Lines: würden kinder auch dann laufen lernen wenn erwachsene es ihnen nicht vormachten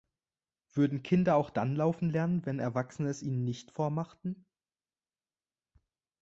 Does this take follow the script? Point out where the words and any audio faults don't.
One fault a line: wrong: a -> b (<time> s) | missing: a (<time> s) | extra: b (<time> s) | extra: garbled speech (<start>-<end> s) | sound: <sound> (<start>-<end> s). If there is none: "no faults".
no faults